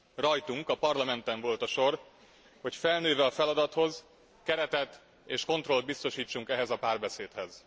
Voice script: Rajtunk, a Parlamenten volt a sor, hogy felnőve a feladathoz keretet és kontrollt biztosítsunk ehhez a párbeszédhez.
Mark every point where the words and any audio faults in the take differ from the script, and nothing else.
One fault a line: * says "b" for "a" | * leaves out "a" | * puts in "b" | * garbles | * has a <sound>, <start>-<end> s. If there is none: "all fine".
all fine